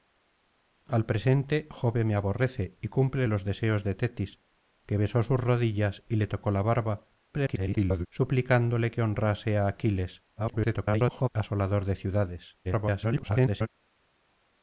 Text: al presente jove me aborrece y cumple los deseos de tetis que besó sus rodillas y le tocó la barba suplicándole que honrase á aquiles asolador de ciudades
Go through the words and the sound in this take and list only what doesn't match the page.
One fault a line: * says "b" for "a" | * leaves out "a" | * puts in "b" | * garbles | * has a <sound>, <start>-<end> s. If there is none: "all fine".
* garbles
* garbles
* garbles